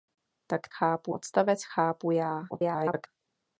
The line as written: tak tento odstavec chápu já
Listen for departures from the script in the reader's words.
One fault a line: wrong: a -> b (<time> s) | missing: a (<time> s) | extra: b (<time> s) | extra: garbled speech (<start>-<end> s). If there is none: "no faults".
wrong: tento -> chápu (0.7 s)
extra: garbled speech (2.5-3.1 s)